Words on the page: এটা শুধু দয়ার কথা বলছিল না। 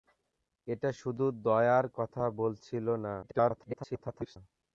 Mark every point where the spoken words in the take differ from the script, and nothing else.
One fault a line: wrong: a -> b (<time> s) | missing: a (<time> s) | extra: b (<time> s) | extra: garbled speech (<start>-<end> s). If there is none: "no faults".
extra: garbled speech (3.2-4.4 s)